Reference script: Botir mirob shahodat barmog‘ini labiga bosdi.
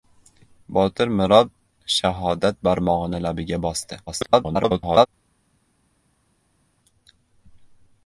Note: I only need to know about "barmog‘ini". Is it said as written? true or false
true